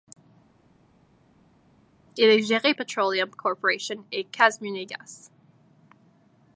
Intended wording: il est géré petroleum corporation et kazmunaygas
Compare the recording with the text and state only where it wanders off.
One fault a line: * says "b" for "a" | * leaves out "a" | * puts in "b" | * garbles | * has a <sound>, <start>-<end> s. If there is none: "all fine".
all fine